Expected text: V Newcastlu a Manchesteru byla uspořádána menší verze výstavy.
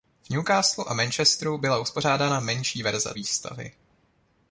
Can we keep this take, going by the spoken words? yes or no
yes